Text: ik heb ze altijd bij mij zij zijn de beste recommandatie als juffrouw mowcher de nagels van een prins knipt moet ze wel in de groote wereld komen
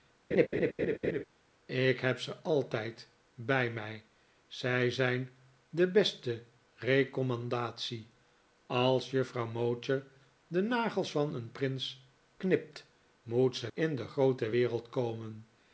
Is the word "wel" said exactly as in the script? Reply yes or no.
no